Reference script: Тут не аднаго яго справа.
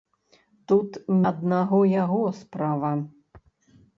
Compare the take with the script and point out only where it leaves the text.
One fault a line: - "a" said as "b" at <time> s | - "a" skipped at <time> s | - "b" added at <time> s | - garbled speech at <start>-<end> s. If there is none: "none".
- "не" skipped at 1.0 s